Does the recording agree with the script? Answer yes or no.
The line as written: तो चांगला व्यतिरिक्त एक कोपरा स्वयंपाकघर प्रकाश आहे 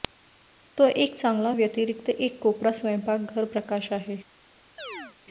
no